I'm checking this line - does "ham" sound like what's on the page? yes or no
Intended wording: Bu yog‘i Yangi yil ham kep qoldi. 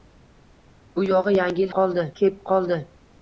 no